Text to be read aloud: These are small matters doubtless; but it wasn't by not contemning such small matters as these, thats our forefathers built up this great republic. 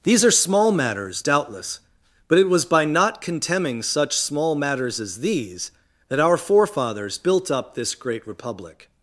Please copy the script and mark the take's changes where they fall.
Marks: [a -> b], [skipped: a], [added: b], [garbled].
These are small matters doubtless; but it [wasn't -> was] by not contemning such small matters as these, [thats -> that] our forefathers built up this great republic.